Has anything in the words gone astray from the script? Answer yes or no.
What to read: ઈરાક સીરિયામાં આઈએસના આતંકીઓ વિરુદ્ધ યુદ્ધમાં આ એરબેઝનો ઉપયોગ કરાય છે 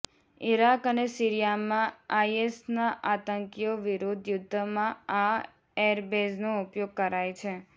yes